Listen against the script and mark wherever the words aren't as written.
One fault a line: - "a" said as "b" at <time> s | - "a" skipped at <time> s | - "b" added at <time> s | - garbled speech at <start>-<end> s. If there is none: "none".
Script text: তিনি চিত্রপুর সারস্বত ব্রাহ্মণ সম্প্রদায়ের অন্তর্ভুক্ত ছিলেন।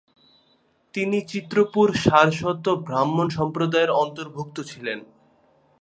none